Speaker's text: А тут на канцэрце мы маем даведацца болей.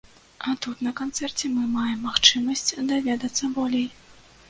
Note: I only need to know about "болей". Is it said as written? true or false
true